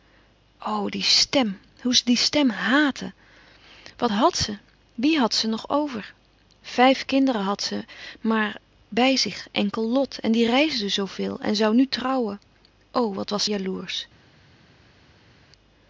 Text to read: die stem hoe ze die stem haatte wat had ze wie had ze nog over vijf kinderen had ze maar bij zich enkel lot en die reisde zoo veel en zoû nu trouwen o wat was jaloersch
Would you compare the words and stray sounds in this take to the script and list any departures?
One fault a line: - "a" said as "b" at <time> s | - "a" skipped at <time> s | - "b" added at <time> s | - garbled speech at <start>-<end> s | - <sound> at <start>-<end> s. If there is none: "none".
none